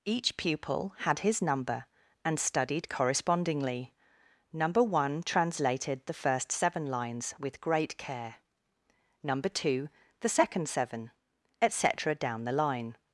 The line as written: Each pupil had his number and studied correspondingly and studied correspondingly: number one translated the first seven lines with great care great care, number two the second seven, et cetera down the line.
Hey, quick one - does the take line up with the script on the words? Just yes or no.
no